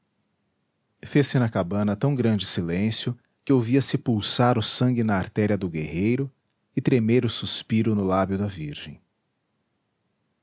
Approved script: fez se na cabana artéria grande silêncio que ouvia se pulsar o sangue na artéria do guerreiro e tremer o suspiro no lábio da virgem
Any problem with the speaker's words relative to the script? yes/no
yes